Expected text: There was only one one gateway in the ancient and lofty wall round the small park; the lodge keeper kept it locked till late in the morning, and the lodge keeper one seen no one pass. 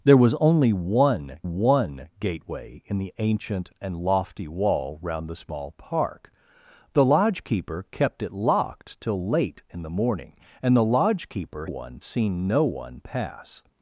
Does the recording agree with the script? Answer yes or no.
yes